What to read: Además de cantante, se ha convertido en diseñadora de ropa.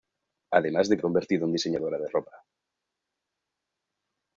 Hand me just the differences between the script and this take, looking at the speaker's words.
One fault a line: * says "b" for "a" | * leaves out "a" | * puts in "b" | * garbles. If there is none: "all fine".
* leaves out "cantante se"